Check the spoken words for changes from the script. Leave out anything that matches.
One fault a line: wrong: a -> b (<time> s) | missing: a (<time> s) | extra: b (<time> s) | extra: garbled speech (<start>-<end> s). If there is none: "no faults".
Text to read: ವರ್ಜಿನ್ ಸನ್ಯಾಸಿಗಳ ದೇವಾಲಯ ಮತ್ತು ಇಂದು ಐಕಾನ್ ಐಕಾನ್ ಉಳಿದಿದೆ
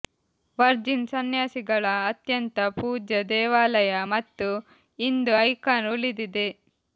extra: ಅತ್ಯಂತ ಪೂಜ್ಯ (2.1 s)
missing: ಐಕಾನ್ (5.9 s)